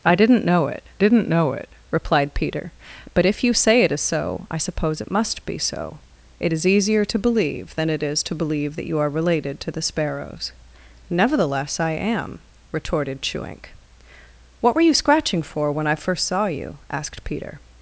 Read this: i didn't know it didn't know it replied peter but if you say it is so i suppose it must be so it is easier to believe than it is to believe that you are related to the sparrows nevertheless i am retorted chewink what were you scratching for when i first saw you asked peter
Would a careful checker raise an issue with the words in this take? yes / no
no